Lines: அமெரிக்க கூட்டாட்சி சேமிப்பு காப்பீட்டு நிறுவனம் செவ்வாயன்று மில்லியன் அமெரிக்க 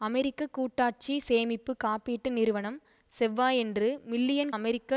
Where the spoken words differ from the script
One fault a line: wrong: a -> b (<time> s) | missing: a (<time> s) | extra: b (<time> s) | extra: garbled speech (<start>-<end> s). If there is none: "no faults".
no faults